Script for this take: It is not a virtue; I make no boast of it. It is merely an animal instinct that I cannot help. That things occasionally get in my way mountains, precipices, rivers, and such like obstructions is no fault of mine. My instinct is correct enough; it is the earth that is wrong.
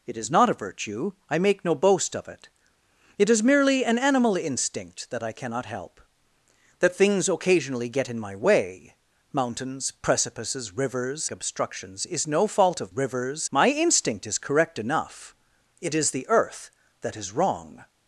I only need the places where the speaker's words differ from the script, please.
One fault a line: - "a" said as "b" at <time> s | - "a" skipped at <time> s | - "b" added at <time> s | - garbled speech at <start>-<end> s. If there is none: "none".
- "and such like" skipped at 11.3 s
- "mine" said as "rivers" at 12.9 s